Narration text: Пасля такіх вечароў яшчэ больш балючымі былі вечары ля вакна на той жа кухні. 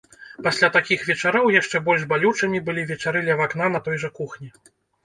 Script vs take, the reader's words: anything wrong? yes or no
no